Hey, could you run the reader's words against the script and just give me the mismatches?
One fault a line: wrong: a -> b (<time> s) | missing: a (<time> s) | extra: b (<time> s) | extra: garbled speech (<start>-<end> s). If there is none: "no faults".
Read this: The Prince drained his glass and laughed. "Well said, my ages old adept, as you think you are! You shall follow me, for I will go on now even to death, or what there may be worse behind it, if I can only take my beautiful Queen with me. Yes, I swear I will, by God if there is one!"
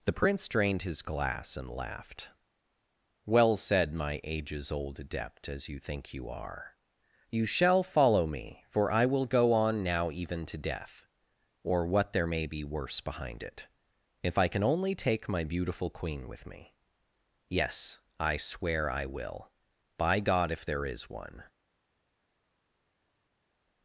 no faults